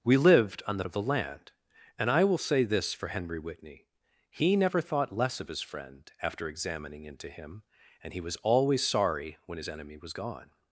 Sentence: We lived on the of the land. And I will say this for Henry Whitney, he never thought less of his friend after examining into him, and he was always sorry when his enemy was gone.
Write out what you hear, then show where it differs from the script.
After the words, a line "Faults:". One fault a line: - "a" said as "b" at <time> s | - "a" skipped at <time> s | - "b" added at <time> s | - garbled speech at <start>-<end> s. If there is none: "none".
We lived on the of the land. And I will say this for Henry Whitney, he never thought less of his friend after examining into him, and he was always sorry when his enemy was gone.
Faults:
none